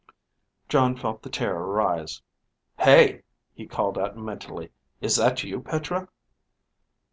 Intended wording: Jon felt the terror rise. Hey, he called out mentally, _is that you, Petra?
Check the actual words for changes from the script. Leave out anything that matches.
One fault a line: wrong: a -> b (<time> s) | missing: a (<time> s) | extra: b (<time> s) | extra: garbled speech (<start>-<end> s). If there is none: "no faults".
no faults